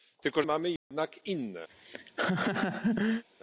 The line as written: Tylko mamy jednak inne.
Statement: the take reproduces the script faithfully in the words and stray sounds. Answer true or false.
false